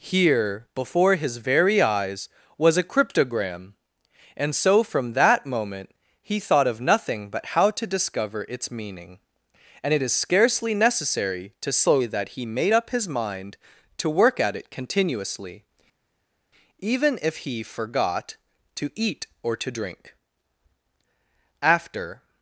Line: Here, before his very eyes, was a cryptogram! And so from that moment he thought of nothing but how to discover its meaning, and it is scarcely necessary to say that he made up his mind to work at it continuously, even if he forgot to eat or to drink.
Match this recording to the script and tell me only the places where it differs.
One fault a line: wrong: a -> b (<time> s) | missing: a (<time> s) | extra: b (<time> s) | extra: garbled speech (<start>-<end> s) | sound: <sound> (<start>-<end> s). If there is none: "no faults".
extra: After (21.6 s)